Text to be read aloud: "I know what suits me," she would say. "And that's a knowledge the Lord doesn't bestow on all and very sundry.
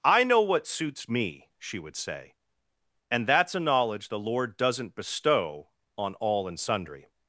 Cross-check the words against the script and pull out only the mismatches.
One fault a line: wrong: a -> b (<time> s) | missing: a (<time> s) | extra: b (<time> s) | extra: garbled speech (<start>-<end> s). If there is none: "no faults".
missing: very (6.6 s)